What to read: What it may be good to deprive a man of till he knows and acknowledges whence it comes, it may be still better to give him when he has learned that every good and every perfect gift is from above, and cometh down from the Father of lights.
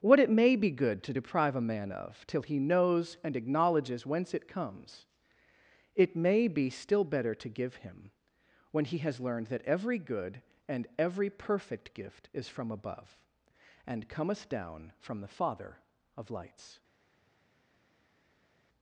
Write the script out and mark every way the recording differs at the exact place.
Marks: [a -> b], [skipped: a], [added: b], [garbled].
What it may be good to deprive a man of till he knows and acknowledges whence it comes, it may be still better to give him when he has learned that every good and every perfect gift is from above, and cometh down from the Father of lights.